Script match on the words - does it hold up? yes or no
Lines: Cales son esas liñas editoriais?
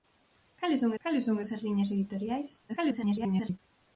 no